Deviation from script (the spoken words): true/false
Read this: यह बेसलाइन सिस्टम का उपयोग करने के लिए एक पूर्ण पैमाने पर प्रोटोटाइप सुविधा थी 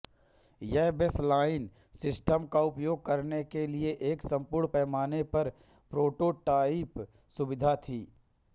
false